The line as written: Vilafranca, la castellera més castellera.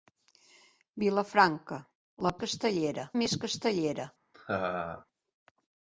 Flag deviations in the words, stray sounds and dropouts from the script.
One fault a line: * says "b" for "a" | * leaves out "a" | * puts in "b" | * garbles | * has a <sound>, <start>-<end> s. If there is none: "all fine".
* has a laugh, 4.3-5.1 s